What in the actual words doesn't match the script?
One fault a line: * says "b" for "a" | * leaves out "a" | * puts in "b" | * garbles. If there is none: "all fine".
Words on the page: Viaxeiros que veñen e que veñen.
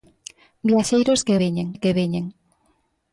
all fine